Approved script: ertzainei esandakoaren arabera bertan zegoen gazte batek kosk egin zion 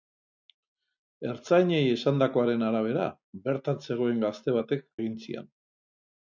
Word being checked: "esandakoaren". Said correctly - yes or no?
yes